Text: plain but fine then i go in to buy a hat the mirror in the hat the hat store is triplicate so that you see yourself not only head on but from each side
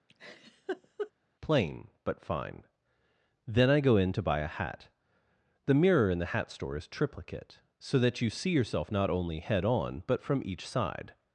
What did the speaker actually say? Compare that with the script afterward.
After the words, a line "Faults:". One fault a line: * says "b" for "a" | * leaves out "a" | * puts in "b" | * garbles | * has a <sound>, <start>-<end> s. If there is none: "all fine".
plain but fine then i go in to buy a hat the mirror in the hat store is triplicate so that you see yourself not only head on but from each side
Faults:
* has a laugh, 0.1-1.1 s
* leaves out "the hat"